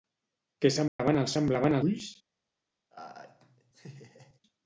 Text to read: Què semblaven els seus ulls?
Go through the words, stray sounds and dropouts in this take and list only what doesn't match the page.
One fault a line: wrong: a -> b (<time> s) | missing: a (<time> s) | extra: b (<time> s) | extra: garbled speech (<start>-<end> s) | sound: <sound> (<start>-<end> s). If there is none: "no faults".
sound: dropout (0.9-1.0 s)
wrong: seus -> semblaven (1.4 s)
sound: laugh (2.9-4.4 s)